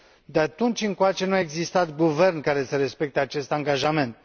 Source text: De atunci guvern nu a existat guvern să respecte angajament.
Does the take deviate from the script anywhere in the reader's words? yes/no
yes